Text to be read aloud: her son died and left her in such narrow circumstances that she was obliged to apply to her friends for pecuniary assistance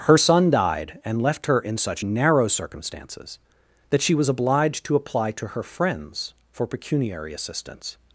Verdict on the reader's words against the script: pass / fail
pass